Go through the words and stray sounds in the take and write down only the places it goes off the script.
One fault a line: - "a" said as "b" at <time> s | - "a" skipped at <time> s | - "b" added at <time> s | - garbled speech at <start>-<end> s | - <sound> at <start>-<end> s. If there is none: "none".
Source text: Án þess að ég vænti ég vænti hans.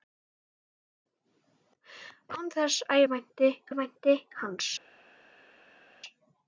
none